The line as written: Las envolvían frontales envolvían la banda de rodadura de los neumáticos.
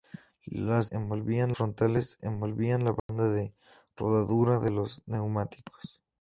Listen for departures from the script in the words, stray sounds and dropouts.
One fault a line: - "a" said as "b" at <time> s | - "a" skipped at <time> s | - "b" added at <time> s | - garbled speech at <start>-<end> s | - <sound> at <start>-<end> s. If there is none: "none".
- dropout at 3.0-3.1 s